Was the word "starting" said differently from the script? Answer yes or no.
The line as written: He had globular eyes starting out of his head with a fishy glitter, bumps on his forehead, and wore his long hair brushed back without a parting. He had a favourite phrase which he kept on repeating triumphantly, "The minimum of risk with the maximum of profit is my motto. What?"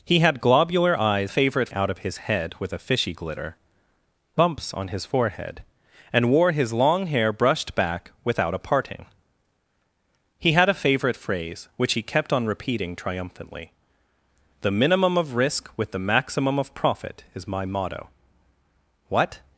yes